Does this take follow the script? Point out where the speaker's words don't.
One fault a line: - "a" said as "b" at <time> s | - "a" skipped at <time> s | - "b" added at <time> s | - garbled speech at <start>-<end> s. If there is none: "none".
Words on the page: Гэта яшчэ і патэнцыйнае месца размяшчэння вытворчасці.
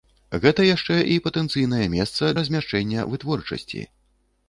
none